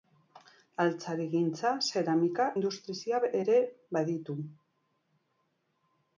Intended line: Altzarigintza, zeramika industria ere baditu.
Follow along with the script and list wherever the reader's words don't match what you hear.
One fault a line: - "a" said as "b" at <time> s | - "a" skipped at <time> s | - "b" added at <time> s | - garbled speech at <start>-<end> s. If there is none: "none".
none